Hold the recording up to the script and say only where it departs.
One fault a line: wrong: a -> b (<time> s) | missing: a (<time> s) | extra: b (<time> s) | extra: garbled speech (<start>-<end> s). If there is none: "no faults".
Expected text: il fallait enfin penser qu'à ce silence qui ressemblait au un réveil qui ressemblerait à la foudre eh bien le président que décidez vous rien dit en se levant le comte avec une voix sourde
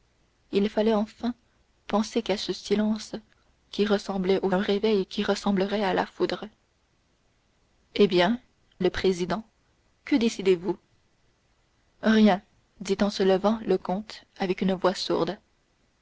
no faults